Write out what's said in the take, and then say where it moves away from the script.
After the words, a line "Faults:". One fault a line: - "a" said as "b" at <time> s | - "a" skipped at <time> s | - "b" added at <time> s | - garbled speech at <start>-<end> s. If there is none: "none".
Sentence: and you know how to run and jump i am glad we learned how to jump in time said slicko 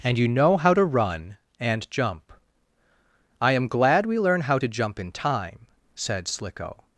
and you know how to run and jump i am glad we learn how to jump in time said slicko
Faults:
- "learned" said as "learn" at 4.2 s